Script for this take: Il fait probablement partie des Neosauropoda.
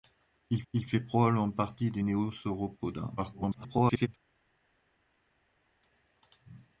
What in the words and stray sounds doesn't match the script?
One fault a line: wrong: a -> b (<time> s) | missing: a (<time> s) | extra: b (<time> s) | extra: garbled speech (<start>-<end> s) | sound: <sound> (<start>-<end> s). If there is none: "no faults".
extra: il (0.7 s)
extra: garbled speech (3.2-4.1 s)